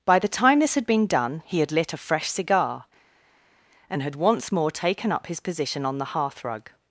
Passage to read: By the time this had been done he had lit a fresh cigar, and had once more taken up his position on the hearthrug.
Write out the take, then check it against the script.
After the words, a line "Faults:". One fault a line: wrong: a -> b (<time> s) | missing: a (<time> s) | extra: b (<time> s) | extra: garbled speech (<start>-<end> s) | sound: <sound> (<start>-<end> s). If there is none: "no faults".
By the time this had been done he had lit a fresh cigar, and had once more taken up his position on the hearthrug.
Faults:
no faults